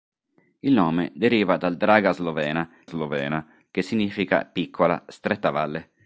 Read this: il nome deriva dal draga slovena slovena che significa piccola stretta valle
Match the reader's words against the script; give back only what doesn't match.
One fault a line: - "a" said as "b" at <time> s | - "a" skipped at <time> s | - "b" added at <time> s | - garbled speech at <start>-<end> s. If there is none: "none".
none